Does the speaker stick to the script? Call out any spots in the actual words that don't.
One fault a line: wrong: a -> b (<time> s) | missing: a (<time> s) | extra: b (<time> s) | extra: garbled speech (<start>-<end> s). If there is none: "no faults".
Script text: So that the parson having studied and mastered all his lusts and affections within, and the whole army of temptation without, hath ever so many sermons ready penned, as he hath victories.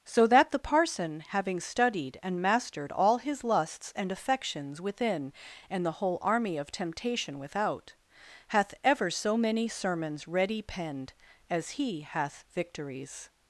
no faults